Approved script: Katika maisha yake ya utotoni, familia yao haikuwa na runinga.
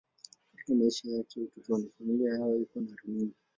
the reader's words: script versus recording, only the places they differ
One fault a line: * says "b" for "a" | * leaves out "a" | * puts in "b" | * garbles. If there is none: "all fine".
all fine